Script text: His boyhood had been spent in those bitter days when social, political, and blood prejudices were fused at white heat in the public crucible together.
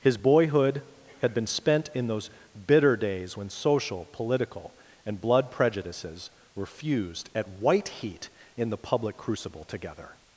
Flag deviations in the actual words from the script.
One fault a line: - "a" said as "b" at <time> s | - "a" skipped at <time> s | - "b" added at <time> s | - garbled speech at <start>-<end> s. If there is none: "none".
none